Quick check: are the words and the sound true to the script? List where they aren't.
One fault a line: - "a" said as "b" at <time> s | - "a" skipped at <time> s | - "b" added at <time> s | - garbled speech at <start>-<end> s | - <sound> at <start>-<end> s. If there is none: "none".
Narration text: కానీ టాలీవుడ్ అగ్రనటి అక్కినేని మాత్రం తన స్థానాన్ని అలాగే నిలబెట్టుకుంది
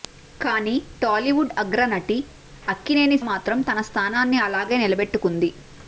none